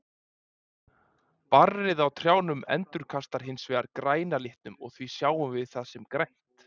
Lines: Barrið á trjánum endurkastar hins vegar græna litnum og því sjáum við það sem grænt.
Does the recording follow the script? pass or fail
pass